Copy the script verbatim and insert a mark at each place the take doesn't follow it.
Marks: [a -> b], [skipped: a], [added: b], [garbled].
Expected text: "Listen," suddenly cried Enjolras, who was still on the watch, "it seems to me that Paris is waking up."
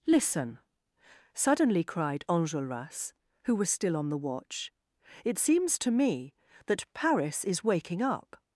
"Listen," suddenly cried Enjolras, who was still on the watch, "it seems to me that Paris is waking up."